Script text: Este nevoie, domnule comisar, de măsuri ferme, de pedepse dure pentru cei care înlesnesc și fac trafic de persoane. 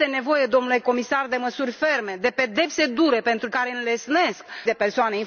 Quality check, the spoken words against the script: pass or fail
fail